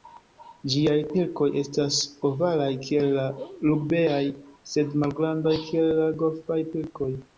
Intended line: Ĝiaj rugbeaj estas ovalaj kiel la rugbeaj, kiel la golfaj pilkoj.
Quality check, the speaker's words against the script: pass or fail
fail